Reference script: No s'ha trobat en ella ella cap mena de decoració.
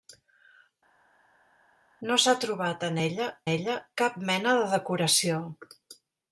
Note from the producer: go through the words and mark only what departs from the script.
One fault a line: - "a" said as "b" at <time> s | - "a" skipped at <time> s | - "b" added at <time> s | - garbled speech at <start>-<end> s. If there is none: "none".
none